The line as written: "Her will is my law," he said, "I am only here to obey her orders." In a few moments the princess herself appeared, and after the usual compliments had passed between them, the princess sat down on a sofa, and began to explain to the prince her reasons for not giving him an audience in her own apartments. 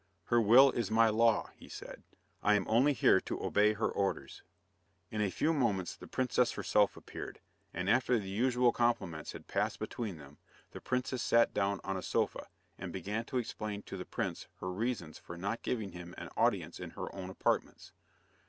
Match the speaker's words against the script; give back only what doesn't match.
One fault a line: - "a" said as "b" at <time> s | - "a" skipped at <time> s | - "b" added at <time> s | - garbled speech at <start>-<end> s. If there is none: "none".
none